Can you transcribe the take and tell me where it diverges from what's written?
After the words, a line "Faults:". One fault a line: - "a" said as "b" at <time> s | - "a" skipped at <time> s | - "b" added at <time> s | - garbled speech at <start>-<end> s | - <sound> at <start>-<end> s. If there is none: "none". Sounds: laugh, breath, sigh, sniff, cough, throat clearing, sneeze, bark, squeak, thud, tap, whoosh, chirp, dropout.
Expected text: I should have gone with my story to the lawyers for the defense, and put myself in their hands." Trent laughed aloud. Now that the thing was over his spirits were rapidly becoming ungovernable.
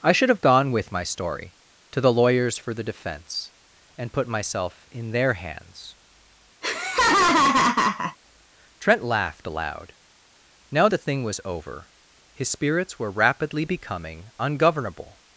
I should have gone with my story to the lawyers for the defense, and put myself in their hands." Trent laughed aloud. Now the thing was over his spirits were rapidly becoming ungovernable.
Faults:
- laugh at 6.6-8.2 s
- "that" skipped at 10.9 s